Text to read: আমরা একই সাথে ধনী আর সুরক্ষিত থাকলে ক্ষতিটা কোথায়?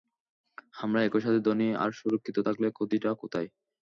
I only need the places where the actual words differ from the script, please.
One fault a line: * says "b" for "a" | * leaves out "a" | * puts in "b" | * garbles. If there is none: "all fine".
all fine